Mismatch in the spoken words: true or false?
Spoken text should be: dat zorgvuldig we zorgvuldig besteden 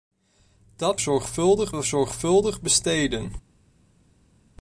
false